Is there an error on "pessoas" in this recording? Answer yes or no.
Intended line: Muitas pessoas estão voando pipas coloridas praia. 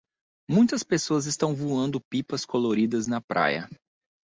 no